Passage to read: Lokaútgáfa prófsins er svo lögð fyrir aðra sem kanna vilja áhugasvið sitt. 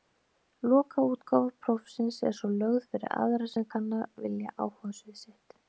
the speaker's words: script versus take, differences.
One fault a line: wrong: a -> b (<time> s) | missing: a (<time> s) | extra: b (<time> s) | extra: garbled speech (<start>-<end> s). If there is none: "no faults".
no faults